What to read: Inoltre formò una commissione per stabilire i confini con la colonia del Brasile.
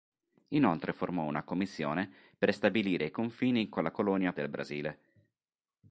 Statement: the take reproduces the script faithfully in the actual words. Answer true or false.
true